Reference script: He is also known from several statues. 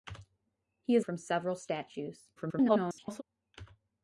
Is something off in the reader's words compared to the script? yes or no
yes